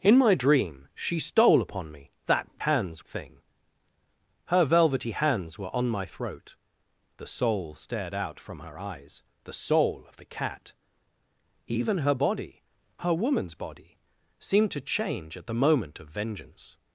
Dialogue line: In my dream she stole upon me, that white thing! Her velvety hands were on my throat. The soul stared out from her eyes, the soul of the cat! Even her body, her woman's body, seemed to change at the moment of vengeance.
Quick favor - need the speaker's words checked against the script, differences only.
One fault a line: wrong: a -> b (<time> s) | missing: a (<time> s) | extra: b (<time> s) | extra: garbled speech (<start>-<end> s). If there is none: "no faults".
wrong: white -> hands (2.6 s)